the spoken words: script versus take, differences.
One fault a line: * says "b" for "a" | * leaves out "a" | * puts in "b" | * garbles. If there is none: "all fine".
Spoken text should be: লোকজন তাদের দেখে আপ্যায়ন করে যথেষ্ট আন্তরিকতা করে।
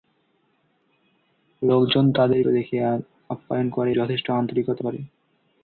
all fine